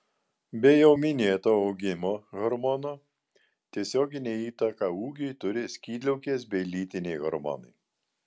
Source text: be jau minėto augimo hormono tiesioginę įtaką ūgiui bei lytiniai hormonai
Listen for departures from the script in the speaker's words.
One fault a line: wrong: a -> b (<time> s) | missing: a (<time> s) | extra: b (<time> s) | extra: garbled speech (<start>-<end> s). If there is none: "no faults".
extra: turi skydliaukės (5.5 s)